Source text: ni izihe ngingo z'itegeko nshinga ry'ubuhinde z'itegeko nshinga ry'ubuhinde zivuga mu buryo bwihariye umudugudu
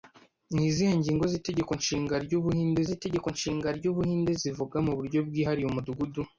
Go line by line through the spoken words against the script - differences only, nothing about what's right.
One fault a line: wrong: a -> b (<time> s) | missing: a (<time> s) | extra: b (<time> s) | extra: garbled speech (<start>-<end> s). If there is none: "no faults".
no faults